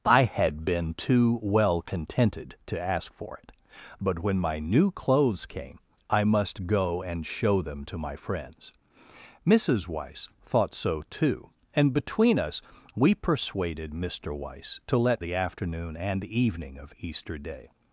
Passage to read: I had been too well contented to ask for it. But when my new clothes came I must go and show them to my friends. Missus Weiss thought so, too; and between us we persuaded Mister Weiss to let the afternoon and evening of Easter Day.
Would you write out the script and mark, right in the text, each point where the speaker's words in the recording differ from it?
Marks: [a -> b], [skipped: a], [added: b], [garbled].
I had been too well contented to ask for it. But when my new clothes came I must go and show them to my friends. Missus Weiss thought so, too; and between us we persuaded Mister Weiss to let the afternoon and evening of Easter Day.